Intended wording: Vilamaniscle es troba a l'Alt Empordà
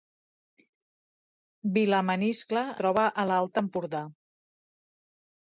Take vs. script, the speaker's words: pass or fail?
fail